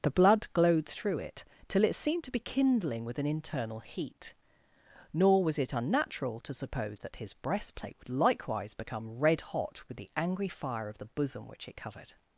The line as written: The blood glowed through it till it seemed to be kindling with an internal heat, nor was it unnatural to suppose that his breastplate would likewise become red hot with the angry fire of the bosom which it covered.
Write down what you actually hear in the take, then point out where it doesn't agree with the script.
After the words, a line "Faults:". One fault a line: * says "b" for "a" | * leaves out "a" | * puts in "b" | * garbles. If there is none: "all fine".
The blood glowed through it till it seemed to be kindling with an internal heat, nor was it unnatural to suppose that his breastplate would likewise become red hot with the angry fire of the bosom which it covered.
Faults:
all fine